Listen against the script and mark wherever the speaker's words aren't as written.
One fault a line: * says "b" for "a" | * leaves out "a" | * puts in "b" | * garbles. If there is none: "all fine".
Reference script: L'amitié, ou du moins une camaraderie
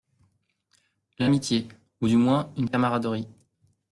all fine